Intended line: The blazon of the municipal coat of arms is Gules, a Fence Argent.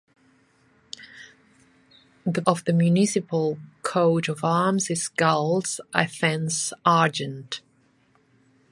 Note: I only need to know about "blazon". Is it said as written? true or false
false